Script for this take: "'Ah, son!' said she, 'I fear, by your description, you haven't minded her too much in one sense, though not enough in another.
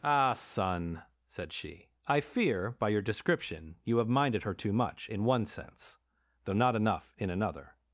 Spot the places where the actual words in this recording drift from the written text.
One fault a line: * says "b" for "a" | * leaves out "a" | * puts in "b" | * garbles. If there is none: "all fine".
* says "have" for "haven't"